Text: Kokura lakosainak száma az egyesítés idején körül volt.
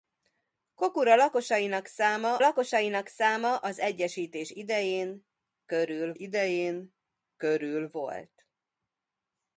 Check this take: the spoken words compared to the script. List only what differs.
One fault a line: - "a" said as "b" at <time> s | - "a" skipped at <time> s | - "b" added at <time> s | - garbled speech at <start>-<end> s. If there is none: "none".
- "lakosainak száma" added at 2.4 s
- "idején körül" added at 6.1 s